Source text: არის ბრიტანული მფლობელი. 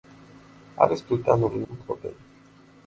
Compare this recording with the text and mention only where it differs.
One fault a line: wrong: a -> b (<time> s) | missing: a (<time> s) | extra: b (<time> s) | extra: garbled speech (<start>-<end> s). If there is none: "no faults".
no faults